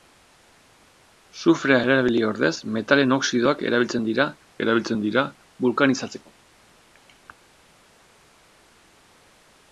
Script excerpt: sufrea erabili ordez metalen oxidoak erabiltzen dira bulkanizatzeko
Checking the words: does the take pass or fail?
fail